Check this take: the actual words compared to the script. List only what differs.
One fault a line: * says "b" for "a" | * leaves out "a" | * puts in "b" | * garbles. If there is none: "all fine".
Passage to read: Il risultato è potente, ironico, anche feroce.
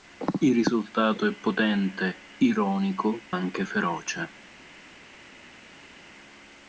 all fine